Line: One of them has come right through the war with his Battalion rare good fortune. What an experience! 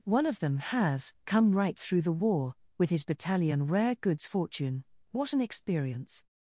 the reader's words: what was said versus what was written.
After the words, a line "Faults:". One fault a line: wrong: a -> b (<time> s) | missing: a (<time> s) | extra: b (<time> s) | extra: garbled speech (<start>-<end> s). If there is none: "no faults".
One of them has come right through the war with his Battalion rare goods fortune. What an experience!
Faults:
wrong: good -> goods (3.9 s)